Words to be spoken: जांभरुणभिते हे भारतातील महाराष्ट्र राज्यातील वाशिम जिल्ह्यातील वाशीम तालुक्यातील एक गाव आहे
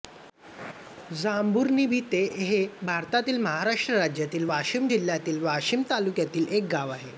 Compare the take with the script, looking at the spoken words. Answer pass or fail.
pass